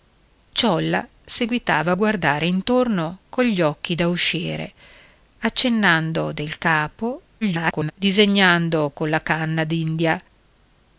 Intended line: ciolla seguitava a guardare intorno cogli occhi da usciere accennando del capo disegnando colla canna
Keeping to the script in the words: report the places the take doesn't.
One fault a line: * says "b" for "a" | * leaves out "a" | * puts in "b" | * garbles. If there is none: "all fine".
* garbles